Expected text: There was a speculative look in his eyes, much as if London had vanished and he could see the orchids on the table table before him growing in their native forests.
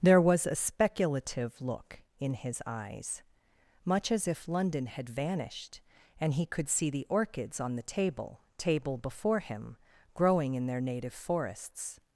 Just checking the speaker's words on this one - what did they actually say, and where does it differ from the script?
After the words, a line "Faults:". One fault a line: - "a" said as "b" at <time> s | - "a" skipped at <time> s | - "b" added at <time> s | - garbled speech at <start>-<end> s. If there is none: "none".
There was a speculative look in his eyes, much as if London had vanished and he could see the orchids on the table table before him growing in their native forests.
Faults:
none